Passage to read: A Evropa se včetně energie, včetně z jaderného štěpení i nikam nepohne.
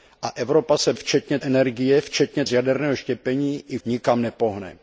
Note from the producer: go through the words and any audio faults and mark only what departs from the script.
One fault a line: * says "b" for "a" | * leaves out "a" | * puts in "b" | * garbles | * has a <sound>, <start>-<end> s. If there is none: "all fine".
all fine